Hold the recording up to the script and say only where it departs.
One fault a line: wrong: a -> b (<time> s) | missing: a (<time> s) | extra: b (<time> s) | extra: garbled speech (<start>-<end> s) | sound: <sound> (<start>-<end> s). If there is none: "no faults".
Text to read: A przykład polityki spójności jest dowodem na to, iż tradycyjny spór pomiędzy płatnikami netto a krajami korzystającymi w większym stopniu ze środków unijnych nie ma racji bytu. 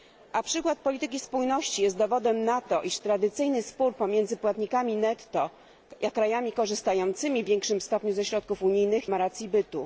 missing: nie (9.1 s)